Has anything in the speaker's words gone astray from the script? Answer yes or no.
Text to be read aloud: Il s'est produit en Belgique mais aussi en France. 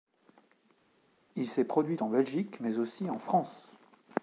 no